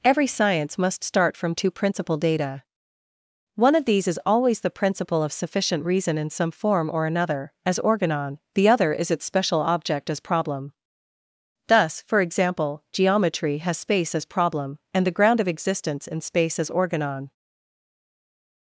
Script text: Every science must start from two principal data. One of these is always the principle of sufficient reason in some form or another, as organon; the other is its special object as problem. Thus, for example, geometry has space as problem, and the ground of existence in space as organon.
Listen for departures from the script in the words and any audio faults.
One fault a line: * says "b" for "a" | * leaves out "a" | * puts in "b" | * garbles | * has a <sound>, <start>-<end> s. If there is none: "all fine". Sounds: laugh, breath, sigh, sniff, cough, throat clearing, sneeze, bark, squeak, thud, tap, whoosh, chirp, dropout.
all fine